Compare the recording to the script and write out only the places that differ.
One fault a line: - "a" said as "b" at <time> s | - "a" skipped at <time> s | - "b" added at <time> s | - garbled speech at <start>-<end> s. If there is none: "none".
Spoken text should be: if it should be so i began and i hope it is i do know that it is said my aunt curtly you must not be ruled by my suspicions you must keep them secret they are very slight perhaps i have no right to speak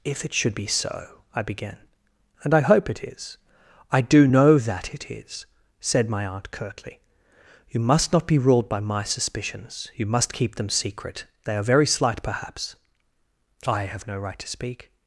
none